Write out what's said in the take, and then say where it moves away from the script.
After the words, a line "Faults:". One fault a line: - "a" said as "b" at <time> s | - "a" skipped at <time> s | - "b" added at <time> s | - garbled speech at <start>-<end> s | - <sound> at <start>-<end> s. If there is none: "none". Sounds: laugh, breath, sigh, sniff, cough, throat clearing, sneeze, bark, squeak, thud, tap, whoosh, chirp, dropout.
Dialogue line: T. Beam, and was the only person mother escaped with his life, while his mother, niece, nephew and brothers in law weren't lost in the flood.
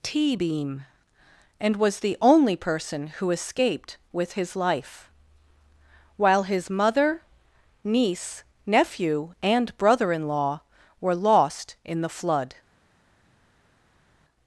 T. Beam, and was the only person who escaped with his life, while his mother, niece, nephew and brother in law were lost in the flood.
Faults:
- "mother" said as "who" at 3.1 s
- "brothers" said as "brother" at 9.8 s
- "weren't" said as "were" at 11.0 s